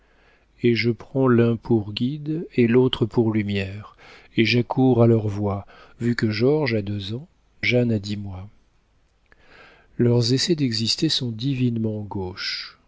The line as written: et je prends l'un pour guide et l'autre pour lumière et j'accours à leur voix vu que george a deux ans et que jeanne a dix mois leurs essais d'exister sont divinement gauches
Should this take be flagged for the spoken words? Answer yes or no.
yes